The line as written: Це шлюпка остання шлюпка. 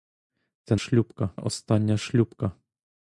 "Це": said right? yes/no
yes